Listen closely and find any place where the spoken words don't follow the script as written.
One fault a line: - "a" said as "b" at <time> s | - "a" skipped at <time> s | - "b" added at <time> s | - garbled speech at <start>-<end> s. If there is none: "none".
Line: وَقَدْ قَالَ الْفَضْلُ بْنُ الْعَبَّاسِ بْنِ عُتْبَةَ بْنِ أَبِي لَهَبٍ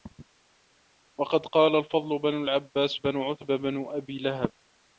none